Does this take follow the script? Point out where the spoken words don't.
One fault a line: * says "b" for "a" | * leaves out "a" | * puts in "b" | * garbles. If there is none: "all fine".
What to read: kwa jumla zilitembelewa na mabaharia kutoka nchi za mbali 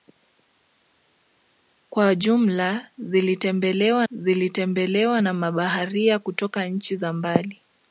* puts in "zilitembelewa"